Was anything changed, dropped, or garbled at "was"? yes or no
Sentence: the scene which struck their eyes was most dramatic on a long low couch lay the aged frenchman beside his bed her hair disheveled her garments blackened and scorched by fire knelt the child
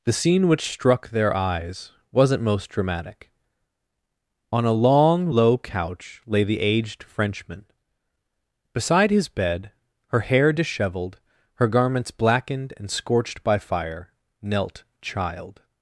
yes